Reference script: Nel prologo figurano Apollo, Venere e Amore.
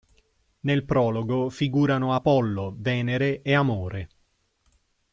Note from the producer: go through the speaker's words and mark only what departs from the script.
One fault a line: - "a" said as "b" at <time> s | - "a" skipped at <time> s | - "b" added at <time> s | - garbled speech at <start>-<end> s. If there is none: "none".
none